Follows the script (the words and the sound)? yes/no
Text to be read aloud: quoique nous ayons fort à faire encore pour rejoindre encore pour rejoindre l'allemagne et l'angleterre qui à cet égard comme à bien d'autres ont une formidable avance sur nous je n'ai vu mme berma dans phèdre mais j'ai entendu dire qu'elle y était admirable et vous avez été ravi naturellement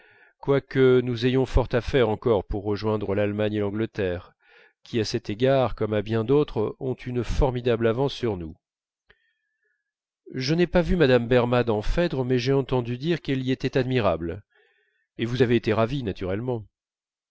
no